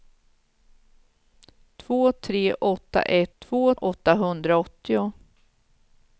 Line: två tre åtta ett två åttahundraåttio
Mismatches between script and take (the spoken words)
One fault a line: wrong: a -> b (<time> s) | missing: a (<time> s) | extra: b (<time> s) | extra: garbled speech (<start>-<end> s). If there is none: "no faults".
no faults